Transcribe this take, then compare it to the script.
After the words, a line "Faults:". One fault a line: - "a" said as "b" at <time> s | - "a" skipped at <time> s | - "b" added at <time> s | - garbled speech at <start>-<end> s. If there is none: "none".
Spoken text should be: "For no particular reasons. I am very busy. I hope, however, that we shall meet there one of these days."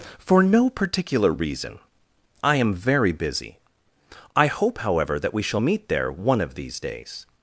"For no particular reason. I am very busy. I hope, however, that we shall meet there one of these days."
Faults:
- "reasons" said as "reason" at 1.3 s